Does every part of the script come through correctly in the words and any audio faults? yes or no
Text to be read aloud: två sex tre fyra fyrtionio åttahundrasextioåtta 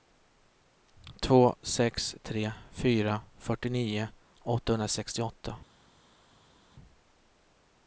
yes